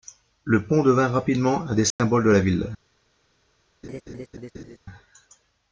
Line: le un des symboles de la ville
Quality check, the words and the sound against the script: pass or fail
fail